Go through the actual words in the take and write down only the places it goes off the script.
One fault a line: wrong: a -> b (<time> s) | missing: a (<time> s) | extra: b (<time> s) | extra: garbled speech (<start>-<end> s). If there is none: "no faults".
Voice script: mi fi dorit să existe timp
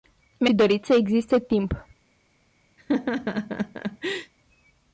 no faults